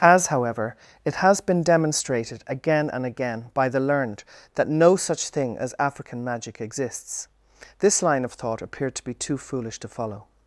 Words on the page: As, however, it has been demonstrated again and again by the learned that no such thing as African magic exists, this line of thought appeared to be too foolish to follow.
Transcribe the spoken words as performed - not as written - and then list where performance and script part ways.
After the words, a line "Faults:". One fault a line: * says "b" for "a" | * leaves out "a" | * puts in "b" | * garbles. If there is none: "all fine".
As, however, it has been demonstrated again and again by the learned that no such thing as African magic exists, this line of thought appeared to be too foolish to follow.
Faults:
all fine